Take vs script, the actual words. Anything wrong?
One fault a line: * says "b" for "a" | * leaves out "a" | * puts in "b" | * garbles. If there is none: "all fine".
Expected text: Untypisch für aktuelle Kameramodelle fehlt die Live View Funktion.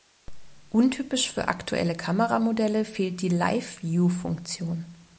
all fine